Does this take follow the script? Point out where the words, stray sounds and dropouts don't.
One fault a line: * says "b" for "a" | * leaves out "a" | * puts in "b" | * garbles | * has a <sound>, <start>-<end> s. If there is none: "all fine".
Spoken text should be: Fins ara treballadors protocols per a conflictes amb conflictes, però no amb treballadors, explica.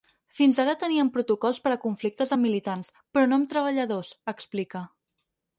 * says "teníem" for "treballadors"
* says "militants" for "conflictes"